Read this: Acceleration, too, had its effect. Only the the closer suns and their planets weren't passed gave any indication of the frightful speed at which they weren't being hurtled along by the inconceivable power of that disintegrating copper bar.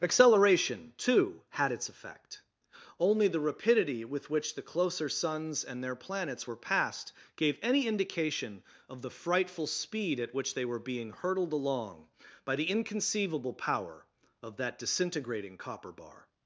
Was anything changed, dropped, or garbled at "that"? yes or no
no